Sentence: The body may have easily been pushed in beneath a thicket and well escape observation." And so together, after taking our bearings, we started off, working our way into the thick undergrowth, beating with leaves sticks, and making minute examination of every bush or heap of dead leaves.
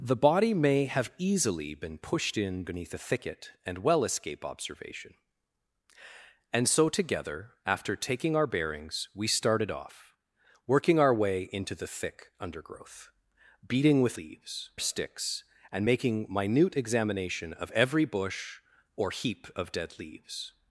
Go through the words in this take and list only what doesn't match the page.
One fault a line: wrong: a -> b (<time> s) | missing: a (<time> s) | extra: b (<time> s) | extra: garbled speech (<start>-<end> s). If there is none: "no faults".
no faults